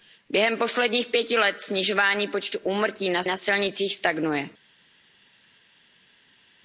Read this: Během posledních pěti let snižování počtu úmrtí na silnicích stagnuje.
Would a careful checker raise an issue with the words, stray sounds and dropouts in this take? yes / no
yes